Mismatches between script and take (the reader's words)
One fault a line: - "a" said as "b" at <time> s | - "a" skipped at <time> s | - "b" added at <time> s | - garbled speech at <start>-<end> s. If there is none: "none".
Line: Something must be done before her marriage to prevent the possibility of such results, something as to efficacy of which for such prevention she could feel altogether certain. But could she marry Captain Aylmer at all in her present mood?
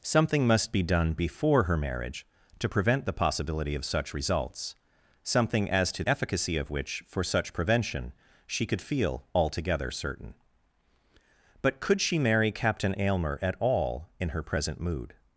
none